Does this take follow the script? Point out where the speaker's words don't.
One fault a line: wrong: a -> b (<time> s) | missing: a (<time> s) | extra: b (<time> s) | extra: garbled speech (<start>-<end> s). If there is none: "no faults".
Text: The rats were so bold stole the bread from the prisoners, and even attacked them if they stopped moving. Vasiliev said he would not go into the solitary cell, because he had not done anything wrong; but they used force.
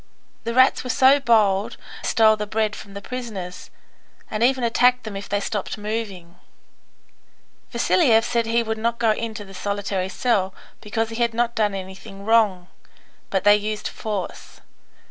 no faults